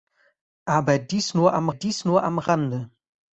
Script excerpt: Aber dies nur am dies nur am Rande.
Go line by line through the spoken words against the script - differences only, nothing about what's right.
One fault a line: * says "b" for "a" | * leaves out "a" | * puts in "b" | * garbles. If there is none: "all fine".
all fine